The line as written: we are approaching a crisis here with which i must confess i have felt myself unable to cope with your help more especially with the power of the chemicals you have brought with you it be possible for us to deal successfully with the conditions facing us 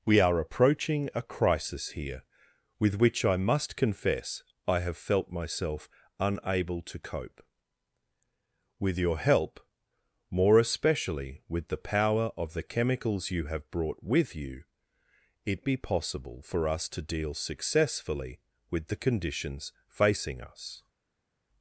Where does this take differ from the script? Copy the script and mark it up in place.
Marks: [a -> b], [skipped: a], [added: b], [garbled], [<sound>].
we are approaching a crisis here with which i must confess i have felt myself unable to cope with your help more especially with the power of the chemicals you have brought with you it be possible for us to deal successfully with the conditions facing us